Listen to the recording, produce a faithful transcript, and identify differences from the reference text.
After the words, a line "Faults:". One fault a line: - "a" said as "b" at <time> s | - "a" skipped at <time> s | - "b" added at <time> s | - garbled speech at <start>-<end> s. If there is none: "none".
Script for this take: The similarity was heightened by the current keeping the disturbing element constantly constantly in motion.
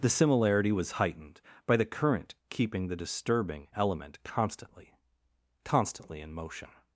The similarity was heightened by the current keeping the disturbing element constantly constantly in motion.
Faults:
none